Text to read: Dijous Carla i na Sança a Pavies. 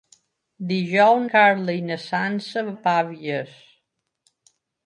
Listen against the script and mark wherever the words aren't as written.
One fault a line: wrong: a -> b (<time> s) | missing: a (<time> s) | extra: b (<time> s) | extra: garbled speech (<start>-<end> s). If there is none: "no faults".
no faults